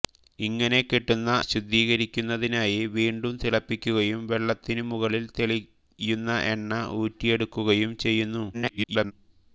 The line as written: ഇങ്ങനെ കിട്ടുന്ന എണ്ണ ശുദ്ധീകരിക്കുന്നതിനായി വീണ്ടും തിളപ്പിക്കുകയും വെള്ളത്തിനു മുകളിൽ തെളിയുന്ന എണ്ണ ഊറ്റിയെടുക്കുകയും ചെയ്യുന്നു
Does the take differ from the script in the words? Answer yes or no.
yes